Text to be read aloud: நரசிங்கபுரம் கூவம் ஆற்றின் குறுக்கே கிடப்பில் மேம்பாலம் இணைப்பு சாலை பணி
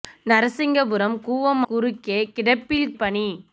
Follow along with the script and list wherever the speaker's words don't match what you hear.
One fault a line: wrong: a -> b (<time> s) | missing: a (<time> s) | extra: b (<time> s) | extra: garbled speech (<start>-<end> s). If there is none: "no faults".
missing: ஆற்றின் (1.6 s)
missing: மேம்பாலம் இணைப்பு சாலை (2.9 s)